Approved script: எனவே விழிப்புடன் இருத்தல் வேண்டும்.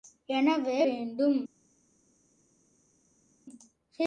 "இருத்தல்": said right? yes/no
no